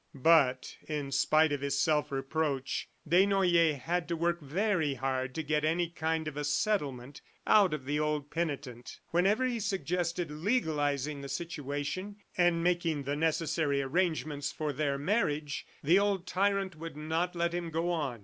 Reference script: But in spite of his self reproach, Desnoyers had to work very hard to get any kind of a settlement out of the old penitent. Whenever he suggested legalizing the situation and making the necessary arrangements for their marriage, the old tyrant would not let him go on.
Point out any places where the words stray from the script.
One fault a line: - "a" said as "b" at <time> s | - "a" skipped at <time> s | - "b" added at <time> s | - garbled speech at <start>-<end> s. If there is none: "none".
none